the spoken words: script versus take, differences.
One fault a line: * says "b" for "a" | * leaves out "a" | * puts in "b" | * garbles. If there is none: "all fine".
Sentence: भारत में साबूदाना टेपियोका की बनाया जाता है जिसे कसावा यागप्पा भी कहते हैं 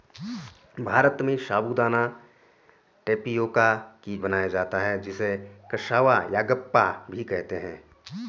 all fine